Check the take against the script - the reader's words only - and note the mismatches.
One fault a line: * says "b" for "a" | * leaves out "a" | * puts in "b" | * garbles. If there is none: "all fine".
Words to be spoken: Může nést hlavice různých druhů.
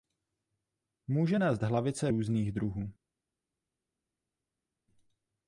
all fine